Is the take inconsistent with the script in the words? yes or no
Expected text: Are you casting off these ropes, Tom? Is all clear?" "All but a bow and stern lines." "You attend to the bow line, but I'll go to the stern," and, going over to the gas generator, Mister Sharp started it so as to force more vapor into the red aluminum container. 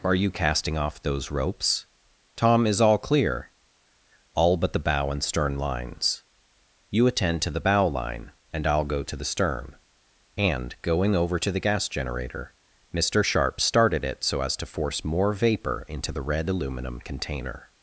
yes